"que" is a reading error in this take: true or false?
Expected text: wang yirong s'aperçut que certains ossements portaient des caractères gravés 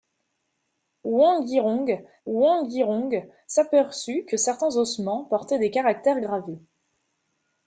false